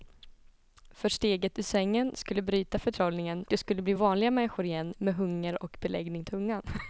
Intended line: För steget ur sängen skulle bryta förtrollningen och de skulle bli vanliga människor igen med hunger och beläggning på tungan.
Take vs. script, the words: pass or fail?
fail